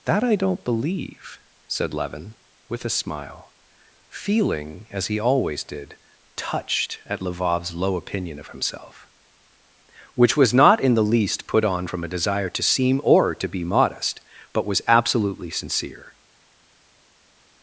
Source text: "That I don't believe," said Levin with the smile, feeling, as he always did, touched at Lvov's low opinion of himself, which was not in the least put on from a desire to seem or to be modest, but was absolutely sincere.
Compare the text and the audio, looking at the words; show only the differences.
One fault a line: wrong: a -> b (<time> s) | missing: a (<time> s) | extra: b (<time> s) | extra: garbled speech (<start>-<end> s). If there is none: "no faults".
wrong: the -> a (2.9 s)